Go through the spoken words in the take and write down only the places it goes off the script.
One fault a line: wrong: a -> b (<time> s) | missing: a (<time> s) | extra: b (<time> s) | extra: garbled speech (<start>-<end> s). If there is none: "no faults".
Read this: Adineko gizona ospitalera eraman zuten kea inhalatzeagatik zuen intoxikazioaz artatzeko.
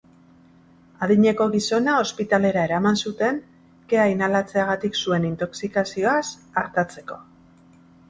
no faults